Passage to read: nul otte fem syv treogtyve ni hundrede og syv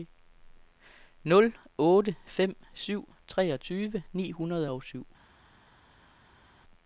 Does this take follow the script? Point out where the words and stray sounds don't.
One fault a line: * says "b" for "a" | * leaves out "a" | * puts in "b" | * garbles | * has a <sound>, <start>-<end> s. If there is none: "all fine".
all fine